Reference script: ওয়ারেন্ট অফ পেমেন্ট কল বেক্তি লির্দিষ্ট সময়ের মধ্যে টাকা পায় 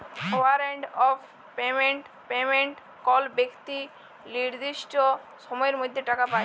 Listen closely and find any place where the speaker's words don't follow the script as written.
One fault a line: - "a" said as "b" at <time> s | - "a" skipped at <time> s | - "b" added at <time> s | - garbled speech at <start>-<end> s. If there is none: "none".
- "পেমেন্ট" added at 2.3 s